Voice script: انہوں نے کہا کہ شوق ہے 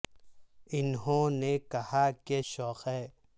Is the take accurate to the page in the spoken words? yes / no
yes